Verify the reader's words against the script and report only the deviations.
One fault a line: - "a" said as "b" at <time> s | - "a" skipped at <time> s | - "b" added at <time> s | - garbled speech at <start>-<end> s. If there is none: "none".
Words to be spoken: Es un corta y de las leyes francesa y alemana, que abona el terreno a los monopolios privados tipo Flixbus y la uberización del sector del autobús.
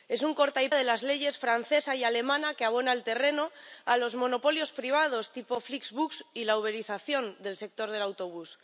none